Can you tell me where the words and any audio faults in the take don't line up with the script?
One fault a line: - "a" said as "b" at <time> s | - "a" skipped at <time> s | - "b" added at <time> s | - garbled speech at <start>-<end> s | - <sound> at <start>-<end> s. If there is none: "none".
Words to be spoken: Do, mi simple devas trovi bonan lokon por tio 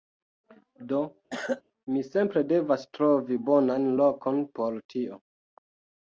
- cough at 1.3-1.6 s